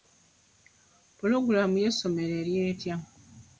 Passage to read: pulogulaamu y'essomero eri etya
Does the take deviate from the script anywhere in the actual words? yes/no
no